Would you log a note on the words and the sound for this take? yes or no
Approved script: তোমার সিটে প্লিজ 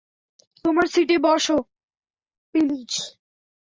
yes